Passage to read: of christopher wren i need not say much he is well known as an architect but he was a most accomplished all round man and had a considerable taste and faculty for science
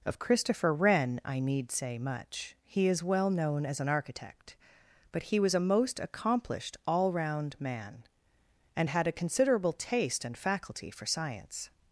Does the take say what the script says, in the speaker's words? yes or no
no